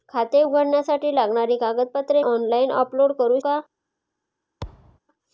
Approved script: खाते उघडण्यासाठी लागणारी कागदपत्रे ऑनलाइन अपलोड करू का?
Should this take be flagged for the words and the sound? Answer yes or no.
yes